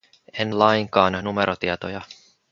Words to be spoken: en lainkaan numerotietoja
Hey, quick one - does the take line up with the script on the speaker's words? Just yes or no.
yes